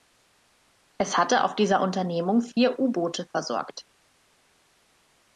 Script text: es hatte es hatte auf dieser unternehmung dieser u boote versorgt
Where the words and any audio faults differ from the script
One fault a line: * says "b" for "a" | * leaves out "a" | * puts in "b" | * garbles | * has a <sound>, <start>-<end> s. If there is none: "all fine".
* leaves out "es hatte"
* says "vier" for "dieser"